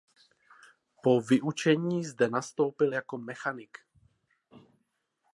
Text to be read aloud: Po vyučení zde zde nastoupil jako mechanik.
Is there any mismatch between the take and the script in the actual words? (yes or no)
yes